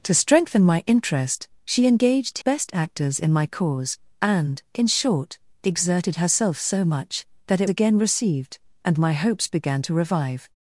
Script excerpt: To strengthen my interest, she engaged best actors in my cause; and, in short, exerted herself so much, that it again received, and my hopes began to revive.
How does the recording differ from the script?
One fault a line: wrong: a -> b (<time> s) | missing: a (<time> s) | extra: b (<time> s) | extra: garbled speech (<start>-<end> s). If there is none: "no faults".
no faults